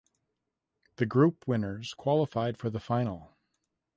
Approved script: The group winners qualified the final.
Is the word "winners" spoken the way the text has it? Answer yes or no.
yes